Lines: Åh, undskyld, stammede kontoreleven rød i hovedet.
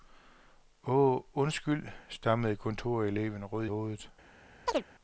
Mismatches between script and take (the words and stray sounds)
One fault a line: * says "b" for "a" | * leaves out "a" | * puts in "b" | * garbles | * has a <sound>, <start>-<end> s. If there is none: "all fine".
* leaves out "i"
* has a chirp, 4.7-4.8 s